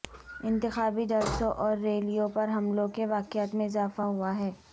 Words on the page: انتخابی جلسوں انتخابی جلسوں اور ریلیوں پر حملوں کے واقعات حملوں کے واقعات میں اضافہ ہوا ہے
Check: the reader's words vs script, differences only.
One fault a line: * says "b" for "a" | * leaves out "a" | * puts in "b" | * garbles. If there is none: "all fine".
* leaves out "انتخابی جلسوں"
* leaves out "حملوں کے واقعات"